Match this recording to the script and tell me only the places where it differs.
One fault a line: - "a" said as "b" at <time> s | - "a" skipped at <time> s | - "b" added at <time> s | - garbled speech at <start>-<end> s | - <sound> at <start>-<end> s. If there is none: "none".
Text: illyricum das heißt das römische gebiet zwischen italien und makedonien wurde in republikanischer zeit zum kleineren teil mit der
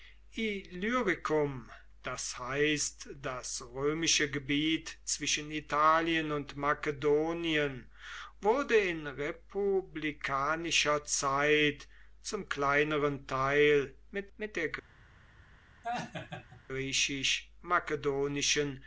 - "mit" added at 14.4 s
- laugh at 15.8-16.6 s